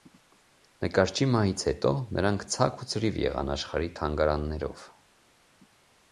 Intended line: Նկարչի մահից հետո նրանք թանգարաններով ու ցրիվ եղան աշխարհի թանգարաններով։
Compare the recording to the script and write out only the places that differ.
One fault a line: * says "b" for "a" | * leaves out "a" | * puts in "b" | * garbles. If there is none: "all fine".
* says "ցաք" for "թանգարաններով"